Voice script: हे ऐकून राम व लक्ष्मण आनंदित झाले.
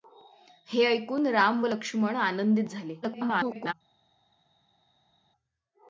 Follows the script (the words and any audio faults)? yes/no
no